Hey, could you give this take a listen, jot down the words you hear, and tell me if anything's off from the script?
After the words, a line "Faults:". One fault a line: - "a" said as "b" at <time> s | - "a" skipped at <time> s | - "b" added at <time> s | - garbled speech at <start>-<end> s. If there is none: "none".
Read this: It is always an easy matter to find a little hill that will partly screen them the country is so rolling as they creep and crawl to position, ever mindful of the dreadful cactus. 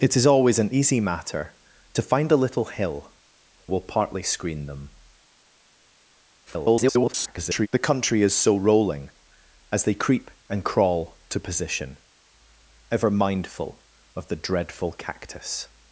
It is always an easy matter to find a little hill will partly screen them [garbled] the country is so rolling as they creep and crawl to position, ever mindful of the dreadful cactus.
Faults:
- "that" skipped at 3.1 s
- garbled speech at 6.5-7.7 s